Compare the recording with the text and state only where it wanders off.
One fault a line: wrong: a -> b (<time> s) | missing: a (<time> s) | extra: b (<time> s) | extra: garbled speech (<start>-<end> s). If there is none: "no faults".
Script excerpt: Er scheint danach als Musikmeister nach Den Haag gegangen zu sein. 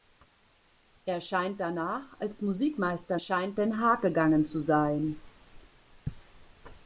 wrong: nach -> scheint (3.2 s)